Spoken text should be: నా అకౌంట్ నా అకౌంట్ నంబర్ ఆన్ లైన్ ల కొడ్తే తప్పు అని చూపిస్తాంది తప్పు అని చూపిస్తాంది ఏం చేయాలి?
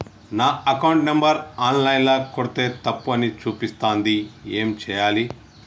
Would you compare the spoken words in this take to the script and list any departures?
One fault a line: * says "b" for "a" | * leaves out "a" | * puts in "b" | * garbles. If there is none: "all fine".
* leaves out "నా అకౌంట్"
* leaves out "తప్పు అని చూపిస్తాంది"